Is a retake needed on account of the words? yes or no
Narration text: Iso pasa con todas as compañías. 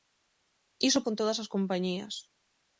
yes